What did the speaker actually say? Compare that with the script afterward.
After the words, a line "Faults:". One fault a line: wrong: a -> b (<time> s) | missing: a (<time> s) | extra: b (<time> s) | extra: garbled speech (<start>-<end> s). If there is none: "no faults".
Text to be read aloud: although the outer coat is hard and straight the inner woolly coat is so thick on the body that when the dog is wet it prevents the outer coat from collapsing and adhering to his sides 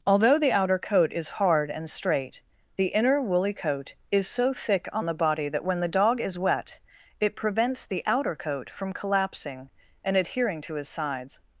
although the outer coat is hard and straight the inner woolly coat is so thick on the body that when the dog is wet it prevents the outer coat from collapsing and adhering to his sides
Faults:
no faults